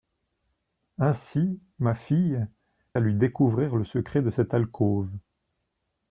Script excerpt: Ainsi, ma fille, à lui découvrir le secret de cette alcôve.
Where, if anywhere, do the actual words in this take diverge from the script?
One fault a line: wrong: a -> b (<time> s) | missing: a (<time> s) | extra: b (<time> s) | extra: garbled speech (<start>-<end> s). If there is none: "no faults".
no faults